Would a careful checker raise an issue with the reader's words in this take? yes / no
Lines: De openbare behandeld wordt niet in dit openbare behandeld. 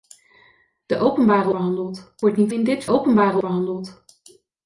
no